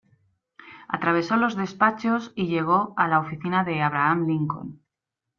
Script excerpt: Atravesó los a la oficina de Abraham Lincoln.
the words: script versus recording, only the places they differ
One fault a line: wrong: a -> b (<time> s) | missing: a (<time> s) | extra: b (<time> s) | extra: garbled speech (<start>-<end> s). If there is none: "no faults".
extra: despachos y llegó (1.6 s)